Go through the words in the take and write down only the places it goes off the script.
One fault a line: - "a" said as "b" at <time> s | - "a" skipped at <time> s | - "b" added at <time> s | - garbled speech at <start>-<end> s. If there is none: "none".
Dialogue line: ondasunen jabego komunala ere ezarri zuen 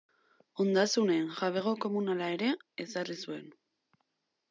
none